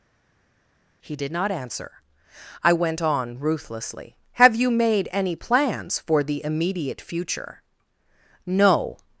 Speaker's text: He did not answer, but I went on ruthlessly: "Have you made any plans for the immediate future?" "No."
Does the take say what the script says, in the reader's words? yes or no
no